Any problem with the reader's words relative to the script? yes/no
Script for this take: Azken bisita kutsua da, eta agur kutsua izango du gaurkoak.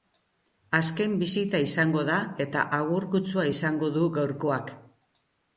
yes